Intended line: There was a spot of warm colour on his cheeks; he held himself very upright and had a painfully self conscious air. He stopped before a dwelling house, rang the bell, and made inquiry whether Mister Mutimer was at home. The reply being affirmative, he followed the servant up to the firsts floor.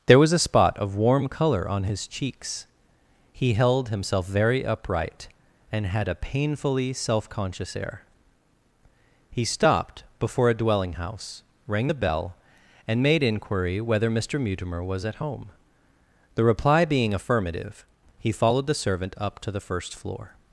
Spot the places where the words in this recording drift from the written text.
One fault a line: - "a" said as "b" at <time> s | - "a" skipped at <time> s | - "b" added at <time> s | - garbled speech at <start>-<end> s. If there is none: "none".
- "firsts" said as "first" at 19.6 s